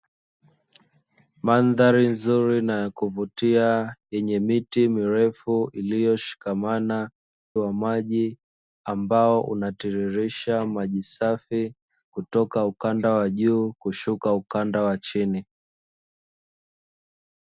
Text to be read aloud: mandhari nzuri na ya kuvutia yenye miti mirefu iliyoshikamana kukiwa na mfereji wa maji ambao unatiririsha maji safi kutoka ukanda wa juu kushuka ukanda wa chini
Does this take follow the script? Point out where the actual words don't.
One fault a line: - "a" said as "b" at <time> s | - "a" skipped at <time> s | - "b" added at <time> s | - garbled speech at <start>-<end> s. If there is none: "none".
- "kukiwa na mfereji" skipped at 7.1 s